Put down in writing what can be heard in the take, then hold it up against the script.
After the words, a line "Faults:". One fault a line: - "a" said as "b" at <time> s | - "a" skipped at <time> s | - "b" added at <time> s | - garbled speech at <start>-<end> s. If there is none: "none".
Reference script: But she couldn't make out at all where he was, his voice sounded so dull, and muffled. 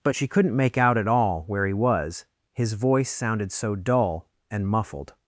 But she couldn't make out at all where he was, his voice sounded so dull, and muffled.
Faults:
none